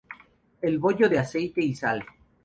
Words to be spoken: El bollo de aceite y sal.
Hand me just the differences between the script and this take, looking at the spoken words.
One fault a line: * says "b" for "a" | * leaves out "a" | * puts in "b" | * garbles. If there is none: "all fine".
all fine